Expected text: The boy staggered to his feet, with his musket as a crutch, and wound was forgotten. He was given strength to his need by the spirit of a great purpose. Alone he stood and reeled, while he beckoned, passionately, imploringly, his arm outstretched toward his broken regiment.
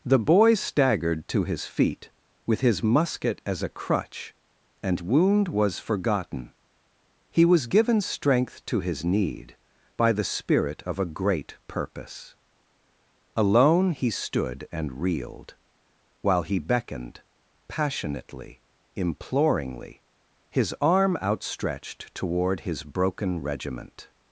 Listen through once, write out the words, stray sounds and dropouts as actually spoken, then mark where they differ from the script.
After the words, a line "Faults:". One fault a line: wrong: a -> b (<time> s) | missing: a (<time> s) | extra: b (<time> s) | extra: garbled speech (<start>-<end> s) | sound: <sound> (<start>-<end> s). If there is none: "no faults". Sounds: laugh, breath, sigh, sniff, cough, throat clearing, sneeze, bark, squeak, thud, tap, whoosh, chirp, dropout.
The boy staggered to his feet, with his musket as a crutch, and wound was forgotten. He was given strength to his need by the spirit of a great purpose. Alone he stood and reeled, while he beckoned, passionately, imploringly, his arm outstretched toward his broken regiment.
Faults:
no faults